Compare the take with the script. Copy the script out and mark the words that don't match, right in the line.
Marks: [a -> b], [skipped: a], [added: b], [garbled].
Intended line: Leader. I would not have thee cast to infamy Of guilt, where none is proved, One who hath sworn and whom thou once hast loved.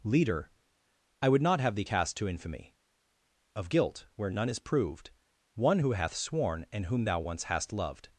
Leader. I would not have thee cast to infamy Of guilt, where none is proved, One who hath sworn and whom thou once hast loved.